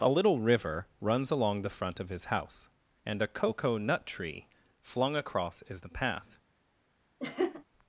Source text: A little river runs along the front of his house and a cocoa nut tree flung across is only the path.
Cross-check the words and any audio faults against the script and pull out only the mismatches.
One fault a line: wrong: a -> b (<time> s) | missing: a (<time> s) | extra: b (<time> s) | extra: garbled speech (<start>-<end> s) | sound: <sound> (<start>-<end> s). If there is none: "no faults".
missing: only (5.8 s)
sound: laugh (7.2-7.6 s)